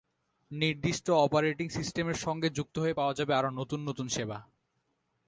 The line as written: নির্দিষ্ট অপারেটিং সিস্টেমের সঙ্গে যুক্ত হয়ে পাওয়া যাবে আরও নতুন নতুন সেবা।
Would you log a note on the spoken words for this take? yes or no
no